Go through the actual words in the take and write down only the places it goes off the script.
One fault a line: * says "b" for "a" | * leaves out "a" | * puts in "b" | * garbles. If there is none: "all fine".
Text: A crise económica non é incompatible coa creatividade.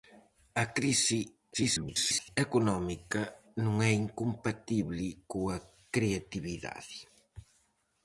* garbles